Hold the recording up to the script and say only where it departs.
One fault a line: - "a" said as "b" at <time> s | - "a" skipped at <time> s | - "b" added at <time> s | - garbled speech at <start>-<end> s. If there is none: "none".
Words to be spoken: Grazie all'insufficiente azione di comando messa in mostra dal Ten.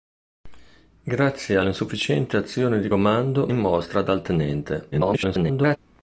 - "messa" skipped at 3.5 s
- garbled speech at 4.9-5.8 s